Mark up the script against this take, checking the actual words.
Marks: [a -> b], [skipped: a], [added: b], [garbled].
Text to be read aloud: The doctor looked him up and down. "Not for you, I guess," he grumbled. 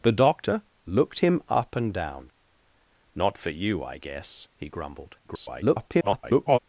The doctor looked him up and down. "Not for you, I guess," he grumbled. [garbled]